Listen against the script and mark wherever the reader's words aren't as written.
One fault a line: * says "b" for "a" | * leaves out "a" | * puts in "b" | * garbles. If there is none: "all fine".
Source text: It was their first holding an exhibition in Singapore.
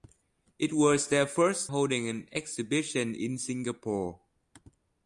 all fine